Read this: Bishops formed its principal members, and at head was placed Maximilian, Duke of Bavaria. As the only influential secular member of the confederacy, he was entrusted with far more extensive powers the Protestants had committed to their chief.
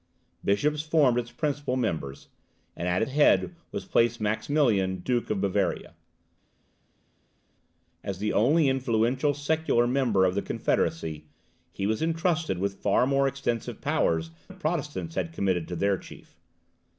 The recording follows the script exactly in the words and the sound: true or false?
true